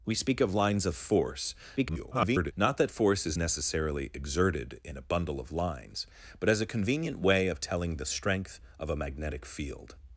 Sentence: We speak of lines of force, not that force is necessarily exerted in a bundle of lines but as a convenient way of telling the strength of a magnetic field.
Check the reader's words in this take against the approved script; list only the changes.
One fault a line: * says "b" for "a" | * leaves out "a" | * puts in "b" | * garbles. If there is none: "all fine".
* garbles